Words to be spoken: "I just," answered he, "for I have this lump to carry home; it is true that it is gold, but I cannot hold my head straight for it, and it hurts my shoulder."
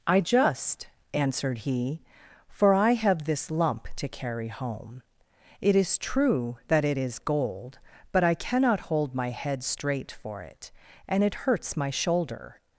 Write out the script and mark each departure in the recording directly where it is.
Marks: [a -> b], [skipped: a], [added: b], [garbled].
"I just," answered he, "for I have this lump to carry home; it is true that it is gold, but I cannot hold my head straight for it, and it hurts my shoulder."